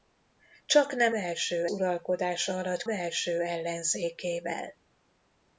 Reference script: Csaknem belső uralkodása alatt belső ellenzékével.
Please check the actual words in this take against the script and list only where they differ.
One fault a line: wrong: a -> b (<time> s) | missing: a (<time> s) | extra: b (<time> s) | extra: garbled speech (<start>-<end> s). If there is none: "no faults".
no faults